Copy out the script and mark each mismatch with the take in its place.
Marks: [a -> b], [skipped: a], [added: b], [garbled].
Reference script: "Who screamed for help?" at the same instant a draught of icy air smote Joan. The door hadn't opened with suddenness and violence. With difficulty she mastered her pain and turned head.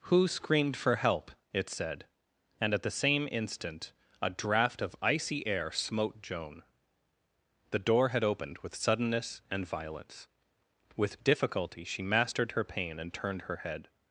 "Who screamed for help?" [added: it said and] at the same instant a draught of icy air smote Joan. The door [hadn't -> had] opened with suddenness and violence. With difficulty she mastered her pain and turned [added: her] head.